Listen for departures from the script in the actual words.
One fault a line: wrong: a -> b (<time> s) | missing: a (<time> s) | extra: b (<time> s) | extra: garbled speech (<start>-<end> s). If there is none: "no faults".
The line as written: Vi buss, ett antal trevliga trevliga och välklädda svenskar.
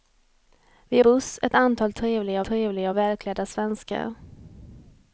no faults